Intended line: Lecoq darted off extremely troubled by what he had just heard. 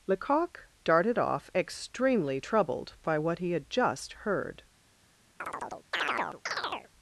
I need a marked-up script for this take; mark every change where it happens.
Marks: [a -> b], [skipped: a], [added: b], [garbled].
Lecoq darted off extremely troubled by what he had just heard.